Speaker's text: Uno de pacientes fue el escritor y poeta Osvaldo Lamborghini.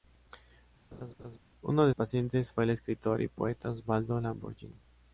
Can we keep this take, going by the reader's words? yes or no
yes